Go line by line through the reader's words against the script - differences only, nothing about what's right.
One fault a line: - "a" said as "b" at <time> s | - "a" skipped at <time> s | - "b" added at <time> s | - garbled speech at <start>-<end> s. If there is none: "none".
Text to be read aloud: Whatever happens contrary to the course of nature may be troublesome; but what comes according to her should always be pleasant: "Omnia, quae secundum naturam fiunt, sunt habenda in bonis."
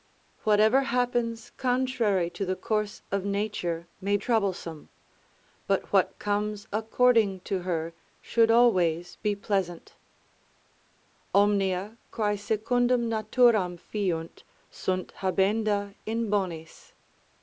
- "be" skipped at 4.2 s